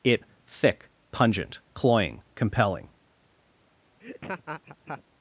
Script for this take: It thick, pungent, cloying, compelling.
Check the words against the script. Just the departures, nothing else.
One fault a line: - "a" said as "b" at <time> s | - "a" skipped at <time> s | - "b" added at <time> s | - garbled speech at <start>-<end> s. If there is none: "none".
none